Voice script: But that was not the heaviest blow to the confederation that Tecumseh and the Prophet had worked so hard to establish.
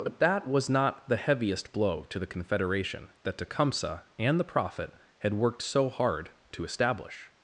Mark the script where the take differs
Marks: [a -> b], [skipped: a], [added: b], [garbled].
But that was not the heaviest blow to the confederation that Tecumseh and the Prophet had worked so hard to establish.